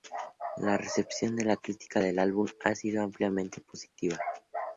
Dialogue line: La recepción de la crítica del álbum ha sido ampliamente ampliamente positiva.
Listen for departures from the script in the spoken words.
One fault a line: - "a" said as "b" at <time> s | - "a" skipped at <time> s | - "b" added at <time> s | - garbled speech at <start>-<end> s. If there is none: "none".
- "ampliamente" skipped at 3.6 s